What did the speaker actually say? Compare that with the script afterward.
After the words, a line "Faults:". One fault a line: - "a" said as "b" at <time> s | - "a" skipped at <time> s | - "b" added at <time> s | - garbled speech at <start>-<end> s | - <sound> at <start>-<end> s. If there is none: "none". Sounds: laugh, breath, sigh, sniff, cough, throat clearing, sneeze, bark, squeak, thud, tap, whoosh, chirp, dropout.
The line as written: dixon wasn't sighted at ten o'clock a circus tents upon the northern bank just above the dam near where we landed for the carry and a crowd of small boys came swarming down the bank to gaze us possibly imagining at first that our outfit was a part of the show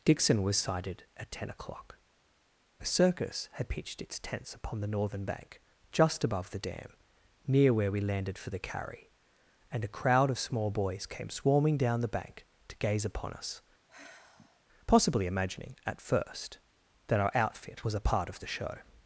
dixon was sighted at ten o'clock a circus had pitched its tents upon the northern bank just above the dam near where we landed for the carry and a crowd of small boys came swarming down the bank to gaze upon us possibly imagining at first that our outfit was a part of the show
Faults:
- "wasn't" said as "was" at 0.4 s
- "had pitched its" added at 3.5 s
- "upon" added at 13.0 s
- sigh at 13.9-14.6 s